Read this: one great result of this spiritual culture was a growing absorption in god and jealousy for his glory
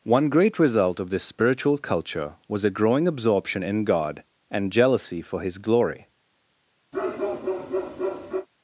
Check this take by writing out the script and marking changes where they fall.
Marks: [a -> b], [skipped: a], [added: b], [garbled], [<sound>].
one great result of this spiritual culture was a growing absorption in god and jealousy for his glory [bark]